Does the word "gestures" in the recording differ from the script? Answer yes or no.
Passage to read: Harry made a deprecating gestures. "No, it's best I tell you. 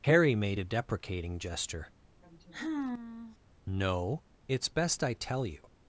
yes